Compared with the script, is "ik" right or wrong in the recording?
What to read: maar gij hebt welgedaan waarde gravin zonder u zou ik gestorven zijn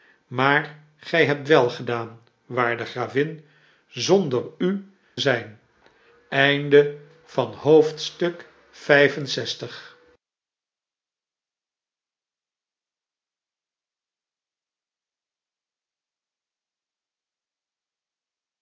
wrong